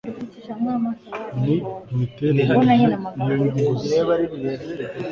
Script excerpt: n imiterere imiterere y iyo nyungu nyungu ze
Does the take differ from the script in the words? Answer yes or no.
yes